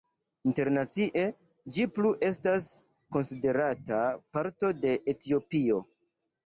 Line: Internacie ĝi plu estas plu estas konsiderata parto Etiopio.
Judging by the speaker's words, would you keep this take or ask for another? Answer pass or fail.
fail